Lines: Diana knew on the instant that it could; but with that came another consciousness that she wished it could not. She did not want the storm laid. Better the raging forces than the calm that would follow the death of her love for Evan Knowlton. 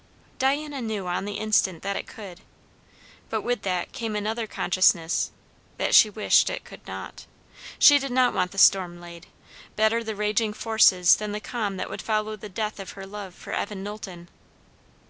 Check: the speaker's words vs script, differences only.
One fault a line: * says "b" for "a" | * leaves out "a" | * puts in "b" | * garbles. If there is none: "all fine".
all fine